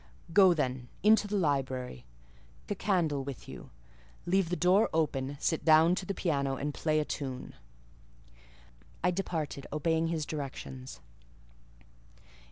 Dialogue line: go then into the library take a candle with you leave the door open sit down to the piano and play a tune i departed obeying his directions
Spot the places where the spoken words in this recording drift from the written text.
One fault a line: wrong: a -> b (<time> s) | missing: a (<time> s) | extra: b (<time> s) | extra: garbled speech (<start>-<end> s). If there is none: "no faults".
missing: take (2.1 s)